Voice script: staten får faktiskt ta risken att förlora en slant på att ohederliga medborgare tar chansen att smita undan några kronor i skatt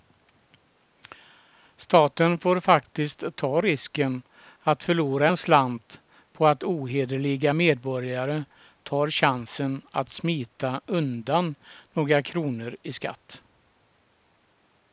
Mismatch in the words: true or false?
false